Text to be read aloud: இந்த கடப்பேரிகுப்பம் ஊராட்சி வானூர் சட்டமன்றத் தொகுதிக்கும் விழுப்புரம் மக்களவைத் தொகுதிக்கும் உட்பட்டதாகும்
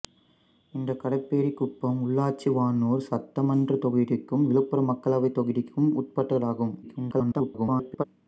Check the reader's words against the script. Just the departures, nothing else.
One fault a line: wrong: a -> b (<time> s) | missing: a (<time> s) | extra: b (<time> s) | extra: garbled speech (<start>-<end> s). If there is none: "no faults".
extra: garbled speech (6.8-8.0 s)